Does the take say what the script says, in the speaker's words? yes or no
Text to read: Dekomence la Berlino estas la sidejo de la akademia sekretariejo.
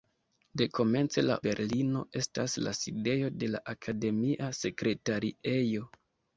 yes